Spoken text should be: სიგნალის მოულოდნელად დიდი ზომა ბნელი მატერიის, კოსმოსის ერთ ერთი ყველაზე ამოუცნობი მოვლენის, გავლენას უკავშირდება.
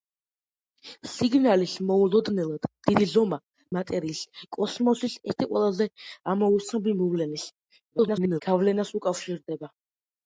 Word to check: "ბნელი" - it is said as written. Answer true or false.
false